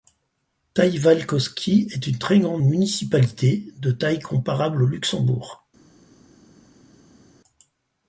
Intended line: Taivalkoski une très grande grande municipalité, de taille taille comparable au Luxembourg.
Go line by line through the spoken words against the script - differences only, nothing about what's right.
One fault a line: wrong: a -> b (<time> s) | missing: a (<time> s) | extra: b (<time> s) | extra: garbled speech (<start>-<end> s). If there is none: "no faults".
extra: est (1.9 s)
missing: grande (2.6 s)
missing: taille (4.2 s)